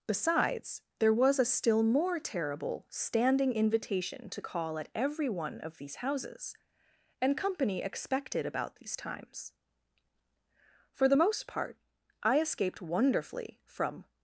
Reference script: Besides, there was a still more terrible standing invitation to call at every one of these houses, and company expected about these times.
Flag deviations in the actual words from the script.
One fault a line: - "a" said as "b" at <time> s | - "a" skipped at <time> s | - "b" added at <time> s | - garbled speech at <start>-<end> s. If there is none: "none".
- "For the most part I escaped wonderfully from" added at 10.9 s